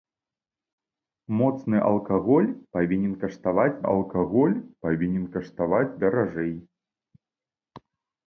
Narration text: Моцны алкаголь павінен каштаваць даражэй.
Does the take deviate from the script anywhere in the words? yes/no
yes